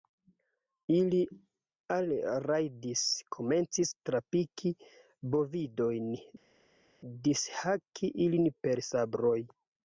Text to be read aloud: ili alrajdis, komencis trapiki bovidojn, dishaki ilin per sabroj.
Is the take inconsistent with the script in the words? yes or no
no